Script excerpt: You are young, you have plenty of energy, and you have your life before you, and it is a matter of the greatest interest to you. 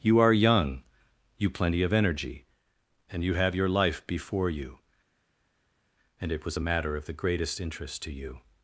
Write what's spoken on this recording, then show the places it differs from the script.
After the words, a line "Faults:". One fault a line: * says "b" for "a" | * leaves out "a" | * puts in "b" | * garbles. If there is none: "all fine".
You are young, you plenty of energy, and you have your life before you, and it was a matter of the greatest interest to you.
Faults:
* leaves out "have"
* says "was" for "is"